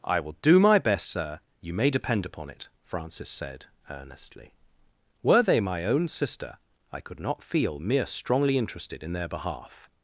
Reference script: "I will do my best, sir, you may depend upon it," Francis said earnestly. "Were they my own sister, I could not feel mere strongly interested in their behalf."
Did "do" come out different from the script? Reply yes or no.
no